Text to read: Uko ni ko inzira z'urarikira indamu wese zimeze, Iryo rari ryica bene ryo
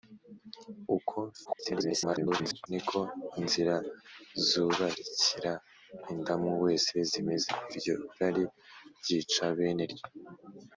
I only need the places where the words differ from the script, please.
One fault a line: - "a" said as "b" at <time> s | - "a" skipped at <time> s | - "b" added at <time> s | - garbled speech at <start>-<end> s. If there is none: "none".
- garbled speech at 1.4-2.7 s